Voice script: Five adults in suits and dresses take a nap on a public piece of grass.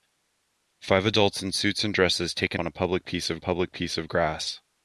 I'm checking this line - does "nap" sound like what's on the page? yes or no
no